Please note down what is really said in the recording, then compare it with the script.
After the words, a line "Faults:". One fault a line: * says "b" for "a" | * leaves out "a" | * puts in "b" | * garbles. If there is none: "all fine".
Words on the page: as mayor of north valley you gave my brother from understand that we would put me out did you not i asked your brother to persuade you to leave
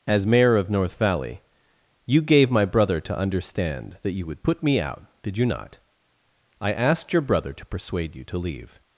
as mayor of north valley you gave my brother to understand that you would put me out did you not i asked your brother to persuade you to leave
Faults:
* says "to" for "from"
* says "you" for "we"